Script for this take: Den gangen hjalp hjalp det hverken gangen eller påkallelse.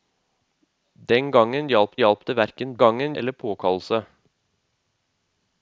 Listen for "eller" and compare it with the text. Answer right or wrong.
right